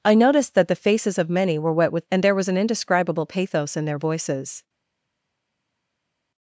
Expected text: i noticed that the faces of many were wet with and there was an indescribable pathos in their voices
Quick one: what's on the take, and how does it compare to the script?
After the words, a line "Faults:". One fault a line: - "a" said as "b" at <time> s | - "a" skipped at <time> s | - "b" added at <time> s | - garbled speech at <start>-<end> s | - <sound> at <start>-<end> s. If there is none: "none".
i noticed that the faces of many were wet with and there was an indescribable pathos in their voices
Faults:
none